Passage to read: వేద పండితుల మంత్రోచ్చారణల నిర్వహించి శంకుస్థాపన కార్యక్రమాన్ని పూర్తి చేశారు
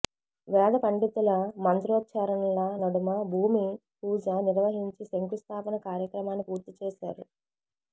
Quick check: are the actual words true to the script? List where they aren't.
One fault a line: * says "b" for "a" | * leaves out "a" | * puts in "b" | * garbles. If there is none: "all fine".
* puts in "నడుమ భూమి పూజ"